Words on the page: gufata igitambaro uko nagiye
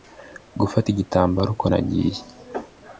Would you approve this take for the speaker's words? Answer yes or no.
yes